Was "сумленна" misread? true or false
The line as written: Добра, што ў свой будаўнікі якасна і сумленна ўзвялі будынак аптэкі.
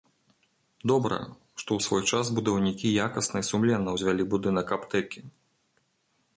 false